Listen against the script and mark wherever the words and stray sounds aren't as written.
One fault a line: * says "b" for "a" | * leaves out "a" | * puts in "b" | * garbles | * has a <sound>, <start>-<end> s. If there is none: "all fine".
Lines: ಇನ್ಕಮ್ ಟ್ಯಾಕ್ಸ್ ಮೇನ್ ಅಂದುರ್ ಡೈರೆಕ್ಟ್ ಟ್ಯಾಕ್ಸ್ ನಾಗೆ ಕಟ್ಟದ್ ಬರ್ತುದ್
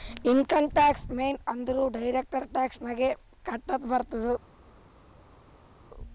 all fine